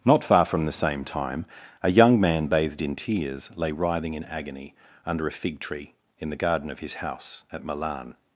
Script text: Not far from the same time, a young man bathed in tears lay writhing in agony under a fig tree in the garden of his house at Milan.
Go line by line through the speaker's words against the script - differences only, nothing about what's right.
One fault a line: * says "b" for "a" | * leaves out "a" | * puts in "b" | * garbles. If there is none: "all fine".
all fine